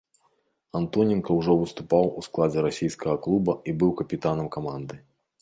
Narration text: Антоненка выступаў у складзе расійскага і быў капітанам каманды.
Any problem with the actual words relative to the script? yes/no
yes